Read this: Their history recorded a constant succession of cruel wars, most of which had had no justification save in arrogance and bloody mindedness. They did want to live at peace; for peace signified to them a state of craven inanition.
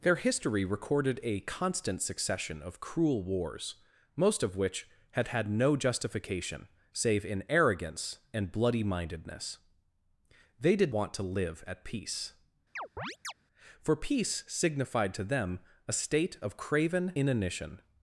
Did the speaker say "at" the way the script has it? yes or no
yes